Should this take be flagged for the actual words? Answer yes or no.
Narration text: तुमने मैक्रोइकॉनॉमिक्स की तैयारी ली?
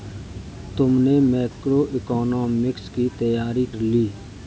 no